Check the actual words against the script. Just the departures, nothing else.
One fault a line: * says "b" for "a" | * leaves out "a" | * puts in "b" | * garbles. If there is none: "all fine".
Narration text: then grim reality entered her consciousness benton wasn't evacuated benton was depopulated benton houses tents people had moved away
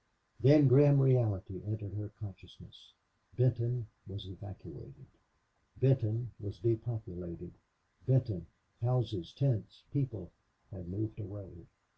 * says "was" for "wasn't"